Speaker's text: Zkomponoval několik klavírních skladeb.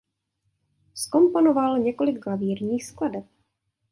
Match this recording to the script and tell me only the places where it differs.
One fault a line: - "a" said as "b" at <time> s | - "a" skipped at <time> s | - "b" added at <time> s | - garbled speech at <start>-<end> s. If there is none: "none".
none